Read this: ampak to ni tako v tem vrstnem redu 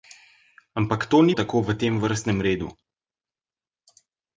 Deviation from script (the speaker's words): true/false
false